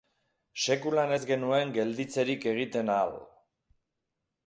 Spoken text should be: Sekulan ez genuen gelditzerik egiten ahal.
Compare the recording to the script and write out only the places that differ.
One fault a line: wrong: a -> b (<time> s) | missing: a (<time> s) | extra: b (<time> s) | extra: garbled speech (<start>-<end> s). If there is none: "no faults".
no faults